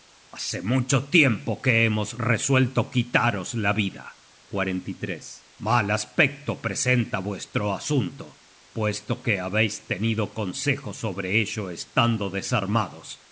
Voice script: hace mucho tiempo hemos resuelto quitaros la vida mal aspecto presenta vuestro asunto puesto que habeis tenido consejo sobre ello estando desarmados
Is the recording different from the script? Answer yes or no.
yes